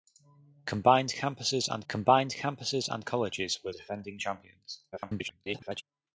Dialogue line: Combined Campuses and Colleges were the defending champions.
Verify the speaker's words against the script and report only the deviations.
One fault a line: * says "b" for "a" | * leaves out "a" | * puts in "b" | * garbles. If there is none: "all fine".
* puts in "combined Campuses and"
* leaves out "the"
* garbles